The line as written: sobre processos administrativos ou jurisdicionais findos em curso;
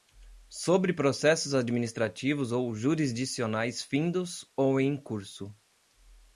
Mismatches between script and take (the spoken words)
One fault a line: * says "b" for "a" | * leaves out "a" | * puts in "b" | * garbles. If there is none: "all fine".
* puts in "ou"